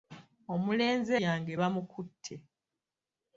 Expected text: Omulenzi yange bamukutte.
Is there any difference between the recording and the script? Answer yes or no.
no